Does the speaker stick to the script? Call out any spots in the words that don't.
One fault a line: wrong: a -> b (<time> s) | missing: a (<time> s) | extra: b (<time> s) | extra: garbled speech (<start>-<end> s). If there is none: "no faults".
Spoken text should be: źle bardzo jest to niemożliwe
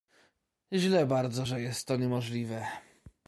extra: że (1.4 s)